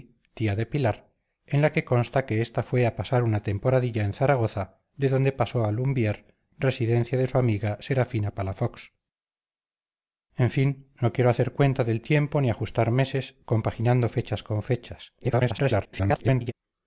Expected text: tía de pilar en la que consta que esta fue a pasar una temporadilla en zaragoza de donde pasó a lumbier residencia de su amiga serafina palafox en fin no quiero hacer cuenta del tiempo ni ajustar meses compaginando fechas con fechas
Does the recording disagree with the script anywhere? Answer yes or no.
yes